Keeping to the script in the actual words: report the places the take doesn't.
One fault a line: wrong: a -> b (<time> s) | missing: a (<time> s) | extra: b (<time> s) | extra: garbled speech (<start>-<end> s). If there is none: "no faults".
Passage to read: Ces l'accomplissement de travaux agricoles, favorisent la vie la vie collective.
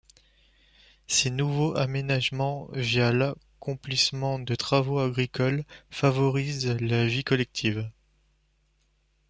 extra: nouveaux aménagements via (1.3 s)
missing: la vie (7.2 s)